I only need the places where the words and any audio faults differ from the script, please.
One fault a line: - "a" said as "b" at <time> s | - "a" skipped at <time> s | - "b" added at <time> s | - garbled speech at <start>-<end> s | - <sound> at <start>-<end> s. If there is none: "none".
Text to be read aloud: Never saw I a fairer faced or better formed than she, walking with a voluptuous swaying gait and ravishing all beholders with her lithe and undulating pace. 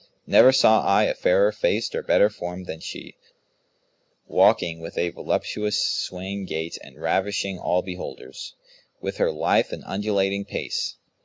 none